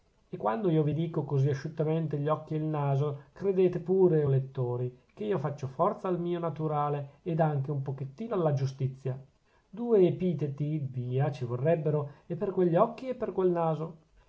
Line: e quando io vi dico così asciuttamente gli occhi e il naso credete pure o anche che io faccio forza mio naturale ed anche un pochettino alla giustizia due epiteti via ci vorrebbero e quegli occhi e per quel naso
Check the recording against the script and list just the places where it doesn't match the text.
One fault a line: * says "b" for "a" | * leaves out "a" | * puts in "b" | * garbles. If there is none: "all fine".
* says "lettori" for "anche"
* puts in "al"
* puts in "per"